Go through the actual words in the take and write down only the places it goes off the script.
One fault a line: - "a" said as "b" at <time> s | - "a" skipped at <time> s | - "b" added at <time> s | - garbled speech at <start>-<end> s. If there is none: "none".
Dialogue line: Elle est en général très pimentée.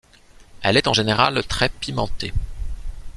none